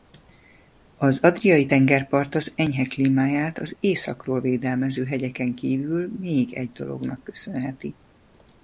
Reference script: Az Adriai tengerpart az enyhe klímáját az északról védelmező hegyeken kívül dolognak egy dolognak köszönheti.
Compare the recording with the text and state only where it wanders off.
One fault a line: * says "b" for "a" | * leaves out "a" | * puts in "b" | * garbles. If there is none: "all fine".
* says "még" for "dolognak"